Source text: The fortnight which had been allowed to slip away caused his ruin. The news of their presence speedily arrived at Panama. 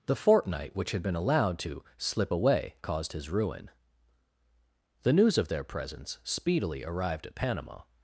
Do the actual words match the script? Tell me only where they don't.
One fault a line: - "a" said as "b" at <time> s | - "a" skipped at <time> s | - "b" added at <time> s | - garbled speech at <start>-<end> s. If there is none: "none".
none